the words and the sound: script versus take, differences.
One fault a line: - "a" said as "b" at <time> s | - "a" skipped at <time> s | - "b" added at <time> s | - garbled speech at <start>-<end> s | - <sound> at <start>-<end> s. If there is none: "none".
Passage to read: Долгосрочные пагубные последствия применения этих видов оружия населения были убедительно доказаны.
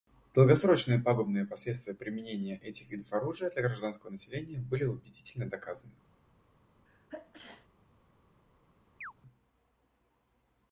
- "для гражданского" added at 3.5 s
- sneeze at 6.9-7.7 s
- chirp at 9.0-9.1 s